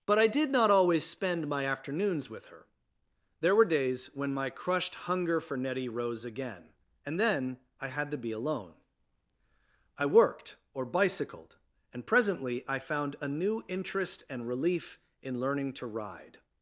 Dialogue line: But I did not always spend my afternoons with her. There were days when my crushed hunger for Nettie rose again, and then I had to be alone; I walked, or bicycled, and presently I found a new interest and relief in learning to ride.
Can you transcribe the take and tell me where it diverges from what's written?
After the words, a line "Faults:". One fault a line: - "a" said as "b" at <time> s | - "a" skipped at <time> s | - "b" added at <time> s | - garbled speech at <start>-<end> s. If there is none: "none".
But I did not always spend my afternoons with her. There were days when my crushed hunger for Nettie rose again, and then I had to be alone; I worked, or bicycled, and presently I found a new interest and relief in learning to ride.
Faults:
- "walked" said as "worked" at 10.1 s